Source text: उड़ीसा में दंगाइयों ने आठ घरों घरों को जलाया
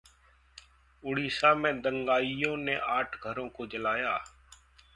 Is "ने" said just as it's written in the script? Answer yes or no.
yes